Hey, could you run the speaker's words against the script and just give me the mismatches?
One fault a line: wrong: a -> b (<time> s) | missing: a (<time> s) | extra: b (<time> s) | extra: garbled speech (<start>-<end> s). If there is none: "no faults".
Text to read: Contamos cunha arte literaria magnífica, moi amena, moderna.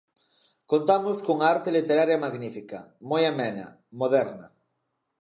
no faults